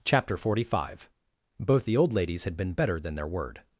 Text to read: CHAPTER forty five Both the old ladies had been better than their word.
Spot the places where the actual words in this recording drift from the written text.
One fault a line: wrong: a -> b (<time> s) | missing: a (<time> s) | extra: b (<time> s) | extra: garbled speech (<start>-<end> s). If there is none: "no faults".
no faults